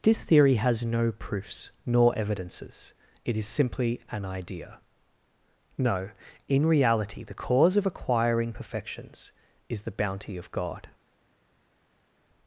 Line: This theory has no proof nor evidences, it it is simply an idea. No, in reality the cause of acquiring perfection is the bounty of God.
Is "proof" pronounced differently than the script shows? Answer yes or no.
yes